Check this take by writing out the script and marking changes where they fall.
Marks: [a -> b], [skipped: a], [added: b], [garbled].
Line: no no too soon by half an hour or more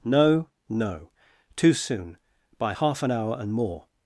no no too soon by half an hour [or -> and] more